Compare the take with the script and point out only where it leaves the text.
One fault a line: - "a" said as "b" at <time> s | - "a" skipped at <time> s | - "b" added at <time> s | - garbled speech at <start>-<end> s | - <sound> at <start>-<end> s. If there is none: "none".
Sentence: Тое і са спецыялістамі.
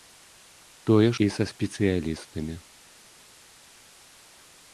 none